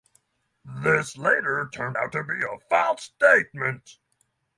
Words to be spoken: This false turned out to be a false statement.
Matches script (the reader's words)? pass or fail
fail